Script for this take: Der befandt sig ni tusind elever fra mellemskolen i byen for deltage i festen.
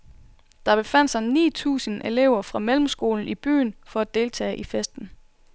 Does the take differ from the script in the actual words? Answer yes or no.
yes